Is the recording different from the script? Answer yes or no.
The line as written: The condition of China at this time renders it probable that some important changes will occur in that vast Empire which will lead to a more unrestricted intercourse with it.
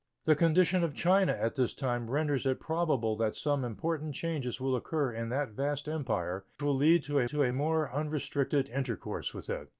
yes